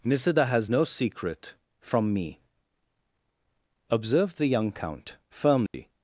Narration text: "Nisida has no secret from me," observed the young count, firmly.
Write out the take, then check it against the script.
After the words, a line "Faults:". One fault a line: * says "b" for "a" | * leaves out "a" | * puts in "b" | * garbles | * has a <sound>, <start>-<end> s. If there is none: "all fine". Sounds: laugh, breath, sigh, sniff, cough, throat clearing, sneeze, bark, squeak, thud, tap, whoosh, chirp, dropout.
"Nisida has no secret from me," observed the young count, firmly.
Faults:
* has a dropout, 5.7-5.7 s